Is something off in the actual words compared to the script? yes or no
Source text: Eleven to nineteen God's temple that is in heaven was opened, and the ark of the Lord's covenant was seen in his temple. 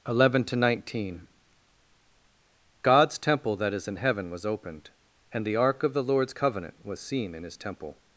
no